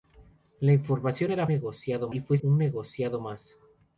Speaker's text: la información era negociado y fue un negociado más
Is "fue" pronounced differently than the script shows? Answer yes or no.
no